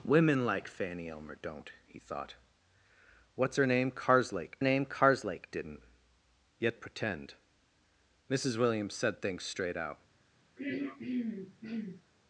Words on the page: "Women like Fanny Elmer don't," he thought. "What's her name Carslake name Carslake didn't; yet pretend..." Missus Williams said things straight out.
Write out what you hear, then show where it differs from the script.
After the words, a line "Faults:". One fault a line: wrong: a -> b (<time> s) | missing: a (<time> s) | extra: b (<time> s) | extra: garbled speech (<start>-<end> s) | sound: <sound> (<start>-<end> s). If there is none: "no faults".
"Women like Fanny Elmer don't," he thought. "What's her name Carslake name Carslake didn't; yet pretend..." Missus Williams said things straight out.
Faults:
sound: throat clearing (10.6-12.0 s)